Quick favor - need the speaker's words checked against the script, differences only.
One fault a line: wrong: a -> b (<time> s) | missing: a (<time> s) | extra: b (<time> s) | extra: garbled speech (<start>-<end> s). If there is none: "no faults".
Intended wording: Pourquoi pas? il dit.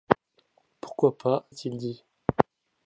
no faults